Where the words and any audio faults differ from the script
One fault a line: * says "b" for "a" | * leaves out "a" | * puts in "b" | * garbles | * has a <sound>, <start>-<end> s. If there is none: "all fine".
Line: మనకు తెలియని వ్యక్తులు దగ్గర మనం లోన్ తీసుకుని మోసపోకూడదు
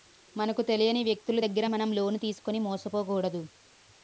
all fine